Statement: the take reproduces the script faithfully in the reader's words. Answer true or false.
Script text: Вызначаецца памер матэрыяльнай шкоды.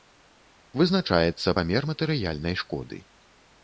true